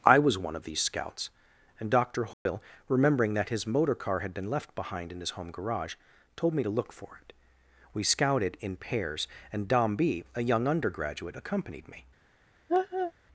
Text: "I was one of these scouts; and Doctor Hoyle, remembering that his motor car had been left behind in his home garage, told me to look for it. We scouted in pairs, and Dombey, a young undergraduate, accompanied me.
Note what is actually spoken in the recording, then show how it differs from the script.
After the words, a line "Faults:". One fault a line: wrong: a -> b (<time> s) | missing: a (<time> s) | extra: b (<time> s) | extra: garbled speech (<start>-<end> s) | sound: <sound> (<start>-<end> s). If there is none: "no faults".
"I was one of these scouts; and Doctor Hoyle, remembering that his motor car had been left behind in his home garage, told me to look for it. We scouted in pairs, and Dombey, a young undergraduate, accompanied me.
Faults:
sound: dropout (2.3-2.5 s)
sound: laugh (12.7-13.1 s)